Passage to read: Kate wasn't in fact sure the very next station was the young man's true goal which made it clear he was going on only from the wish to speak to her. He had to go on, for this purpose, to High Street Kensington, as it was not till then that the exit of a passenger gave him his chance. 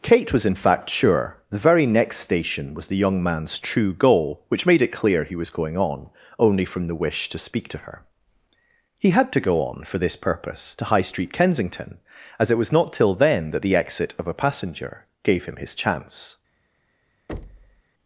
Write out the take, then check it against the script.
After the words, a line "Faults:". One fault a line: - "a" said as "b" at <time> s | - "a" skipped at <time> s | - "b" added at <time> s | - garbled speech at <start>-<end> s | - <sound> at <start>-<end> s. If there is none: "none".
Kate was in fact sure the very next station was the young man's true goal which made it clear he was going on only from the wish to speak to her. He had to go on, for this purpose, to High Street Kensington, as it was not till then that the exit of a passenger gave him his chance.
Faults:
- "wasn't" said as "was" at 0.3 s
- thud at 17.3-17.8 s